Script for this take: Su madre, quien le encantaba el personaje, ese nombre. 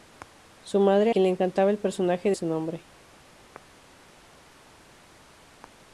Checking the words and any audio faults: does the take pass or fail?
pass